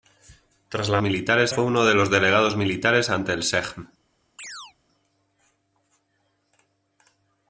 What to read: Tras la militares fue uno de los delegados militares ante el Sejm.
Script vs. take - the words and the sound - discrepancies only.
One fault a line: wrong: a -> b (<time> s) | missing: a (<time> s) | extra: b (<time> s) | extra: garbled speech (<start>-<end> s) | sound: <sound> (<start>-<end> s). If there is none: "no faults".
sound: chirp (4.4-4.7 s)